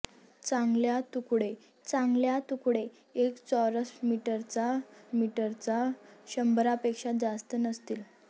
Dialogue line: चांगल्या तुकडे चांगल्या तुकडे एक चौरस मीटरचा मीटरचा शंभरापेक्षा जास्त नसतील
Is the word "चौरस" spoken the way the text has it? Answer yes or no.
yes